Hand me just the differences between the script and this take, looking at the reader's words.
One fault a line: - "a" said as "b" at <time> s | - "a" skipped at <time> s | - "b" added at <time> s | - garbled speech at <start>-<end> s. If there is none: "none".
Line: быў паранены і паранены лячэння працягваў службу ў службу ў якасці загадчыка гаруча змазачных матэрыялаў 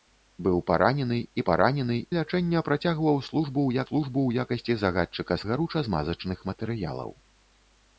none